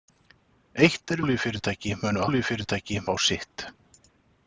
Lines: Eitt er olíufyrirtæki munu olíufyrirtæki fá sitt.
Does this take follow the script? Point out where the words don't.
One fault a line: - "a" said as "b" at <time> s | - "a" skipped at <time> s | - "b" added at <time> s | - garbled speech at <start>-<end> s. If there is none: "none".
none